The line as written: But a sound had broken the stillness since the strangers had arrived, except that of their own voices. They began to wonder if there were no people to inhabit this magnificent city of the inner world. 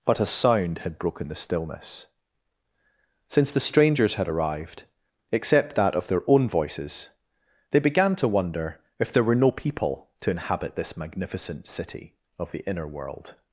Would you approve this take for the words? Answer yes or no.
yes